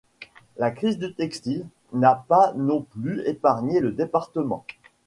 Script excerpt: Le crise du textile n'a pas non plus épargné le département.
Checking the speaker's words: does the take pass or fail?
fail